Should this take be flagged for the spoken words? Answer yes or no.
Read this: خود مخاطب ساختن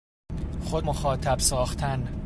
no